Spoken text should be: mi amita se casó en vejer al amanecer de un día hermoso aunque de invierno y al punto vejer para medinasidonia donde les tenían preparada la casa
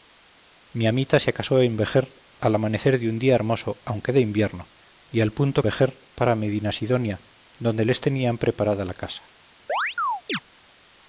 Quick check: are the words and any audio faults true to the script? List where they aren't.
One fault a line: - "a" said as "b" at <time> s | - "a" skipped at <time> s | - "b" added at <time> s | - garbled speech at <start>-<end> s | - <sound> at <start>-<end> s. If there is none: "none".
- chirp at 9.7-10.4 s